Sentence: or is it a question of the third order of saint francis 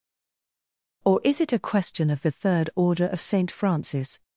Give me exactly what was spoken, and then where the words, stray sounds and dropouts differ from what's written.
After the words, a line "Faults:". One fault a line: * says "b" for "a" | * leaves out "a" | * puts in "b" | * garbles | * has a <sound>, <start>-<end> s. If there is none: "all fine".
or is it a question of the third order of saint francis
Faults:
all fine